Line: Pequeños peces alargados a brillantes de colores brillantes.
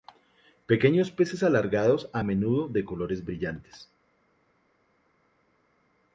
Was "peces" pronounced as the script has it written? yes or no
yes